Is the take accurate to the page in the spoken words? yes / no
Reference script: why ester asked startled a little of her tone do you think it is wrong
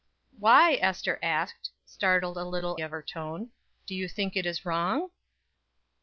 yes